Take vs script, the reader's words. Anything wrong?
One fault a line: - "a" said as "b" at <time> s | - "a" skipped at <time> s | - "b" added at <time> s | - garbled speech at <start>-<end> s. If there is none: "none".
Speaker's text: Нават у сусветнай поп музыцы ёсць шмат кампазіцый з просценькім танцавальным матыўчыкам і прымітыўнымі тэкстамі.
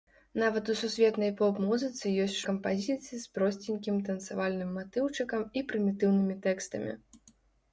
- "шмат" skipped at 2.4 s